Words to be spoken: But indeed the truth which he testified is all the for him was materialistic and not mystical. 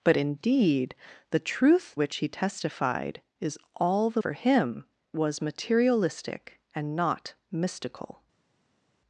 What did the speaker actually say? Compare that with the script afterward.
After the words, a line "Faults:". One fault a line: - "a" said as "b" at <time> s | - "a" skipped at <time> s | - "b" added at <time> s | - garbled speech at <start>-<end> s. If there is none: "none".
But indeed the truth which he testified is all the for him was materialistic and not mystical.
Faults:
none